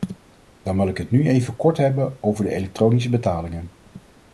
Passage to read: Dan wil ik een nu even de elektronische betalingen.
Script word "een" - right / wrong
wrong